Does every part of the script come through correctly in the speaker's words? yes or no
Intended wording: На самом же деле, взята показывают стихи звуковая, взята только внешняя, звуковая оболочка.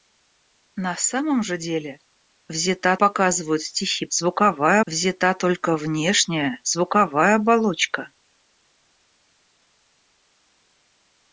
yes